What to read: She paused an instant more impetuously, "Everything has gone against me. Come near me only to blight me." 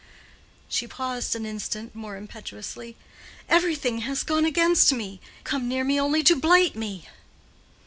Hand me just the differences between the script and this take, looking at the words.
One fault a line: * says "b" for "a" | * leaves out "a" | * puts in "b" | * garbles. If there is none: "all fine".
all fine